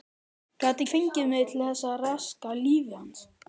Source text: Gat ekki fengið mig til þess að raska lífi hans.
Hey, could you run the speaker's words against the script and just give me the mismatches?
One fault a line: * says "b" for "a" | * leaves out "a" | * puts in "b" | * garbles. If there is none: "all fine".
* leaves out "ekki"